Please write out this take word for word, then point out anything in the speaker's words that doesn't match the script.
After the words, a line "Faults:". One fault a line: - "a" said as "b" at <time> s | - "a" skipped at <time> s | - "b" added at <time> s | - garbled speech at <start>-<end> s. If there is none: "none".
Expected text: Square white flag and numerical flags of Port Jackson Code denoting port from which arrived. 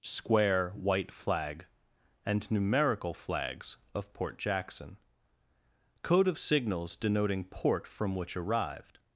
Square white flag and numerical flags of Port Jackson Code of signals denoting port from which arrived.
Faults:
- "of signals" added at 6.3 s